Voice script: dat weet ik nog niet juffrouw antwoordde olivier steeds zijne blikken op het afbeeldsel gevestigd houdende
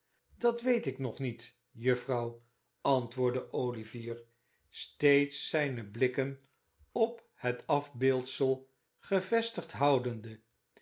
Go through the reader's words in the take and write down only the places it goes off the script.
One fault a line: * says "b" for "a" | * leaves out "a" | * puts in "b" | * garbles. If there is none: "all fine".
all fine